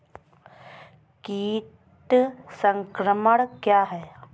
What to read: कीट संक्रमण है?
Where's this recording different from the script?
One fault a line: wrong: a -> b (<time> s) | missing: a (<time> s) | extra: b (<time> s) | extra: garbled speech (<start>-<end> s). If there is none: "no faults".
extra: क्या (3.5 s)